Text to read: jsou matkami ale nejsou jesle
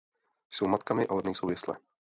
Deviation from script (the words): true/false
false